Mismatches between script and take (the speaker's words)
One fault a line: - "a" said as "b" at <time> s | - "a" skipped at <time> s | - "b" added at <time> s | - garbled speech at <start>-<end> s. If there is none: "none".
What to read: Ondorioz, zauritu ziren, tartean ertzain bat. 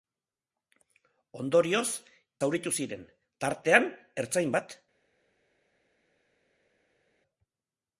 none